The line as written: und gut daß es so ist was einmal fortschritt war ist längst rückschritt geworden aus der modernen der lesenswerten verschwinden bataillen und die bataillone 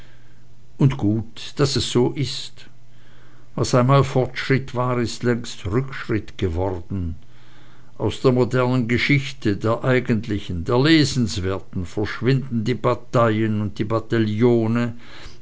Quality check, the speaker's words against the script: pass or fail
fail